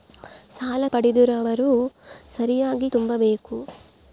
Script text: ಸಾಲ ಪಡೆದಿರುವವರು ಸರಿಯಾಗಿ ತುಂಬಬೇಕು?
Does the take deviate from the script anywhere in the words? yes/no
no